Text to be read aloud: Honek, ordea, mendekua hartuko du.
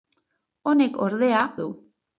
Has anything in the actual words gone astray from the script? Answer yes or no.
yes